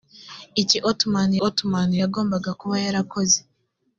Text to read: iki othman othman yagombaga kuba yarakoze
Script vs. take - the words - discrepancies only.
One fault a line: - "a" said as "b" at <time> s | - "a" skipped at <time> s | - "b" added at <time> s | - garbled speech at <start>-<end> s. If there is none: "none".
none